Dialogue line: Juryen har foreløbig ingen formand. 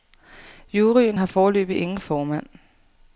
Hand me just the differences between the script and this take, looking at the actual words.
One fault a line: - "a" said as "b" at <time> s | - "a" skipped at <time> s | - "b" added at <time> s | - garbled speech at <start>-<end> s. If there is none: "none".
none